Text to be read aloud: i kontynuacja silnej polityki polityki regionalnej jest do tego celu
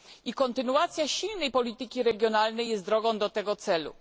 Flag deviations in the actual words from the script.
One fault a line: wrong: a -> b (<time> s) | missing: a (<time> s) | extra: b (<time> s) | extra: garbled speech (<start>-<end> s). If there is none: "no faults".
missing: polityki (2.0 s)
extra: drogą (2.8 s)